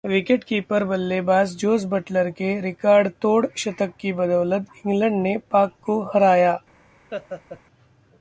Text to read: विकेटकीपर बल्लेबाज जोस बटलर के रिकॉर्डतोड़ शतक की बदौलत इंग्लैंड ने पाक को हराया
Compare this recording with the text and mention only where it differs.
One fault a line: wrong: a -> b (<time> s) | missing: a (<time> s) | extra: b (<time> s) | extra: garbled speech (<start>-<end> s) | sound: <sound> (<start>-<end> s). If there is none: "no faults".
sound: laugh (7.1-7.6 s)